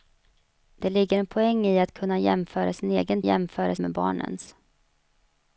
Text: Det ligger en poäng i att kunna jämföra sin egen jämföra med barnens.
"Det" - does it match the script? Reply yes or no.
yes